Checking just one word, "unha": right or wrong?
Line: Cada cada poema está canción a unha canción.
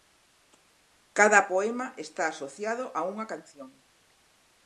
right